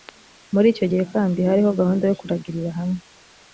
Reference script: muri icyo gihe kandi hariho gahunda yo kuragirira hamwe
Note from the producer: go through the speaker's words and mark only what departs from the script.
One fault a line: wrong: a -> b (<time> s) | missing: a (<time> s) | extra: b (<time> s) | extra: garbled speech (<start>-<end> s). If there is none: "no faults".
no faults